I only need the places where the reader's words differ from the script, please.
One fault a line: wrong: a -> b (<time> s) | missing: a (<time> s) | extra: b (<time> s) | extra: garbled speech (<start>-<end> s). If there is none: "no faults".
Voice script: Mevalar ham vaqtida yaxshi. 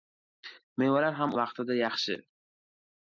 no faults